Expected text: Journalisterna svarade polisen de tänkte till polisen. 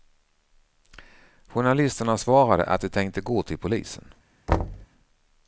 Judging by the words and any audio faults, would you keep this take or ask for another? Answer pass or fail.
fail